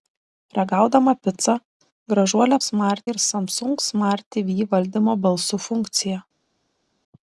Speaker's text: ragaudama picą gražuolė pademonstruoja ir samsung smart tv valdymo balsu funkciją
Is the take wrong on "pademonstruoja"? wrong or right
wrong